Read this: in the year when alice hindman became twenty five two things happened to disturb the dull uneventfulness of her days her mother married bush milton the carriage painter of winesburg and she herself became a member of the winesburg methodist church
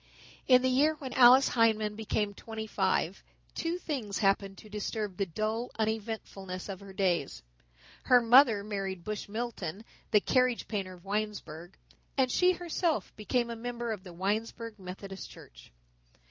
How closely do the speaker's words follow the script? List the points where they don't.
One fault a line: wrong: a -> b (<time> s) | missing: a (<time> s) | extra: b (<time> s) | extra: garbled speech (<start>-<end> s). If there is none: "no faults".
no faults